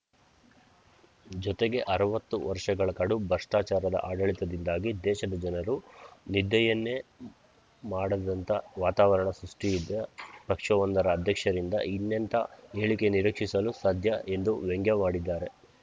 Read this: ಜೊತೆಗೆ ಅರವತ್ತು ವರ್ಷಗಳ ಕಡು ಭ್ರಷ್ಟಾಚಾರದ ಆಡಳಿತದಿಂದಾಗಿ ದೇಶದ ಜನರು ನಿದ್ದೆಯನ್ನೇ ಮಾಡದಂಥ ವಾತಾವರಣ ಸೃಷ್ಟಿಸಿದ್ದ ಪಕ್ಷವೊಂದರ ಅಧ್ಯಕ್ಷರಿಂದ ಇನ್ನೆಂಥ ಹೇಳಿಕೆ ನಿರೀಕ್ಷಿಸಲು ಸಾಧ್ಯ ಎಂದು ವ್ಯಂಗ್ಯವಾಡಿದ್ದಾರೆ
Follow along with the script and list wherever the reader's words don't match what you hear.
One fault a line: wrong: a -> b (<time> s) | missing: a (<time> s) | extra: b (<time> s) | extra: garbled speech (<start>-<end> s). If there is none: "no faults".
no faults